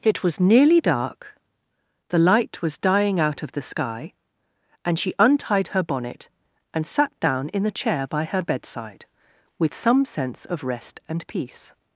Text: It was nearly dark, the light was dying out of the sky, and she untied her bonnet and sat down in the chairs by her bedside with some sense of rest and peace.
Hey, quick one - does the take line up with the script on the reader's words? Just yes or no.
no